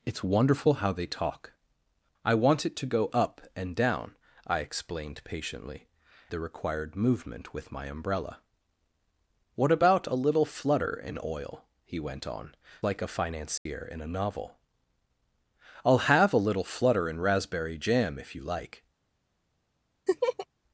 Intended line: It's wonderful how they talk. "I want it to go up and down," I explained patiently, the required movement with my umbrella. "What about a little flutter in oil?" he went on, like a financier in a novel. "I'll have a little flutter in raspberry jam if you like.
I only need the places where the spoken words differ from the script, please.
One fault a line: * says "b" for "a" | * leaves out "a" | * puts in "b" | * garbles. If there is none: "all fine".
all fine